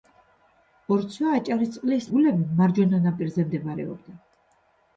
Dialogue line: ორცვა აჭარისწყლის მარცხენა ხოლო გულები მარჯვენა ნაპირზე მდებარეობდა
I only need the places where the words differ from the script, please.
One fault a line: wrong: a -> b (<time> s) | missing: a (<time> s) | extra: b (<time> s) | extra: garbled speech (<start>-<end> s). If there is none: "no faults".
missing: მარცხენა ხოლო (2.1 s)